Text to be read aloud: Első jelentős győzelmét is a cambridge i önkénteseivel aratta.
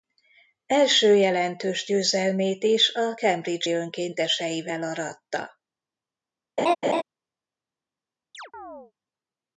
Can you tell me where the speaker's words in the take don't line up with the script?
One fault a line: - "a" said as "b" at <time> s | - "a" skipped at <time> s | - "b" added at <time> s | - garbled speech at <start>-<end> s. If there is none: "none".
none